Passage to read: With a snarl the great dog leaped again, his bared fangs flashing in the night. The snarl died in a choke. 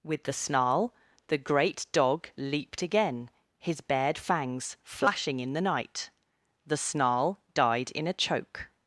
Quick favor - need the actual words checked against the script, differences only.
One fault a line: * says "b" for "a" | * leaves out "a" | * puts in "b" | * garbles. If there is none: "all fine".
* says "the" for "a"